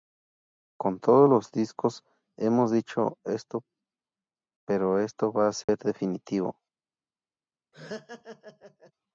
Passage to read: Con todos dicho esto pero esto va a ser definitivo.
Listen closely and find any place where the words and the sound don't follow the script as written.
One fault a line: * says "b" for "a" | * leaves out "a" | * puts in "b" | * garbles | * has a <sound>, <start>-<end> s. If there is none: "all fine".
* puts in "los discos hemos"
* has a dropout, 5.6-5.7 s
* has a laugh, 7.7-8.9 s